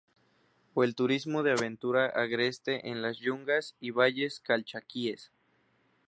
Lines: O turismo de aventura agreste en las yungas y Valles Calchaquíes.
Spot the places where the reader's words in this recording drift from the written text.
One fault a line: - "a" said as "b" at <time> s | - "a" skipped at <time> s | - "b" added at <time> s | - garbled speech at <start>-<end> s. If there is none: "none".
- "el" added at 0.8 s